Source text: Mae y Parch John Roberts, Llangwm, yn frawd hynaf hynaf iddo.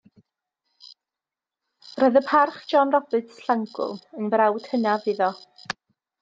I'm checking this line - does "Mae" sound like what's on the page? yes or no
no